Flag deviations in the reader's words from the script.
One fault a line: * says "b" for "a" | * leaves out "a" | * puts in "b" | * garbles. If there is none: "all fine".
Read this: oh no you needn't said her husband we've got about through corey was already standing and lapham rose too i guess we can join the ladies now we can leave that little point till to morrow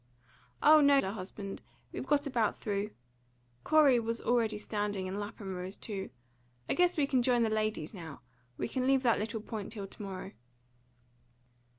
* leaves out "you needn't said"